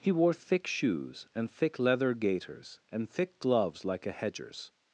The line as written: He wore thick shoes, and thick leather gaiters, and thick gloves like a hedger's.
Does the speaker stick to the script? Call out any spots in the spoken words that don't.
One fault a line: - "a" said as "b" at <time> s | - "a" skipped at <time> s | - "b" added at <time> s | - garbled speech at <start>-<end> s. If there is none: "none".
none